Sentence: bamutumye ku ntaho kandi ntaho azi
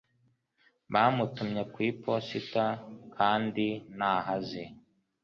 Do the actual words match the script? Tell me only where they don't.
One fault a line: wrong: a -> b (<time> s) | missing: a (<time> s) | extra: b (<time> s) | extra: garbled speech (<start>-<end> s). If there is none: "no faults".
wrong: ntaho -> iposita (1.9 s)